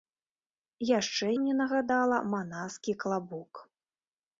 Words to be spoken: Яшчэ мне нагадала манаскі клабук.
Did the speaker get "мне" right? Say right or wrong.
right